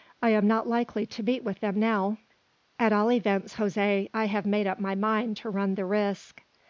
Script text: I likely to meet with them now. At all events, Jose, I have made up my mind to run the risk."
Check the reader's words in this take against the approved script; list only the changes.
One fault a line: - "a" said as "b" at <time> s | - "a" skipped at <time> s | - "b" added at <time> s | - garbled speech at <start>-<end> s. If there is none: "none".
- "am not" added at 0.3 s